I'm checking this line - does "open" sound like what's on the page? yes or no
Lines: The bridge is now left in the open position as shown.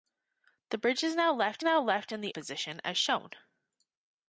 no